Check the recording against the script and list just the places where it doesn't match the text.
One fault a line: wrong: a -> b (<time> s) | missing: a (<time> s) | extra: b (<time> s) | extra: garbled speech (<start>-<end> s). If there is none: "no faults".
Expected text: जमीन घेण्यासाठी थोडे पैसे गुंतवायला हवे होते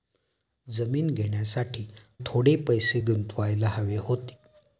no faults